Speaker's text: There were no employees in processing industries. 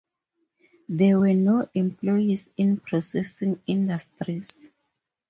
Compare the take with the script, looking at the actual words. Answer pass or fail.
pass